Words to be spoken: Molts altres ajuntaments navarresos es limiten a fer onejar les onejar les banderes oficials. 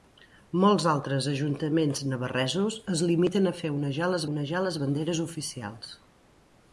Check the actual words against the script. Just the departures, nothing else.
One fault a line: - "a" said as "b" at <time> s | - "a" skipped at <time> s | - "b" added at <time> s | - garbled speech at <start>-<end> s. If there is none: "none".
none